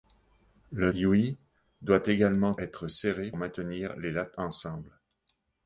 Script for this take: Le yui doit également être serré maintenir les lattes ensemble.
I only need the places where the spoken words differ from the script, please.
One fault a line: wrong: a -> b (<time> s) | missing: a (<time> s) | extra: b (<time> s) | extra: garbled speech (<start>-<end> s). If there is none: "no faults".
no faults